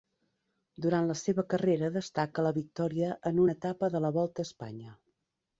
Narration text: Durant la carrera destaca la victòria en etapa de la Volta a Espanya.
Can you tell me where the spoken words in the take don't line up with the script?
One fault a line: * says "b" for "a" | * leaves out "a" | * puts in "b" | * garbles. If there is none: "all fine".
* puts in "seva"
* puts in "una"